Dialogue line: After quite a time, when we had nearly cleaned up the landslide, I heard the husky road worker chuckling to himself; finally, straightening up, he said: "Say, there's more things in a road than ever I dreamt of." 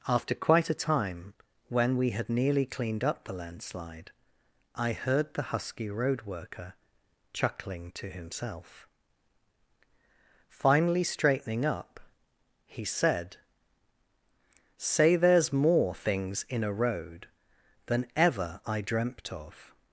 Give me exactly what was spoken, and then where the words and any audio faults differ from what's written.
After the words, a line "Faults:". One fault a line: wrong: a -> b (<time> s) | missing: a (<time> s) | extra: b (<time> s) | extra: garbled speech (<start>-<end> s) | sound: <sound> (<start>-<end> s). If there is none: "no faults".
After quite a time, when we had nearly cleaned up the landslide, I heard the husky road worker chuckling to himself; finally, straightening up, he said: "Say, there's more things in a road than ever I dreamt of."
Faults:
no faults